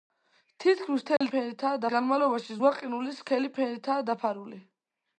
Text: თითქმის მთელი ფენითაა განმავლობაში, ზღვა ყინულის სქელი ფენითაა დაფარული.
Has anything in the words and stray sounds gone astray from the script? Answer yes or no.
yes